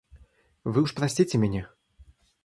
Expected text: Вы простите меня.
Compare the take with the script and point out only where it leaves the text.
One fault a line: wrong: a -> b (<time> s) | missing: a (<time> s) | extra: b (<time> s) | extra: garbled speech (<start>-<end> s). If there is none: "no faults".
extra: уж (0.8 s)